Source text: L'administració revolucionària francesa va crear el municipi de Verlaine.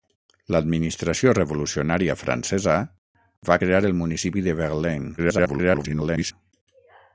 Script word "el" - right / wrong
right